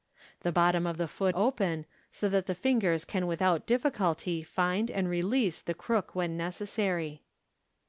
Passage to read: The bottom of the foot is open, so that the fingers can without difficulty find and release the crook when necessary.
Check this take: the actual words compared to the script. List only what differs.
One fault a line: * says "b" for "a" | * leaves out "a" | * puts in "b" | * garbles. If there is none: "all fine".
* leaves out "is"